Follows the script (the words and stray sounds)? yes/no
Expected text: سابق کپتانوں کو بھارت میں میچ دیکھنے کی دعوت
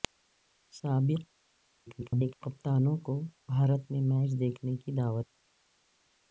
no